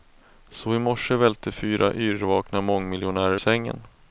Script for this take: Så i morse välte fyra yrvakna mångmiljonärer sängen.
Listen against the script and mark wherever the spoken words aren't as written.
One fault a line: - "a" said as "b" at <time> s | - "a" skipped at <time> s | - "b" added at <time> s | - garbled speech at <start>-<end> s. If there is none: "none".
none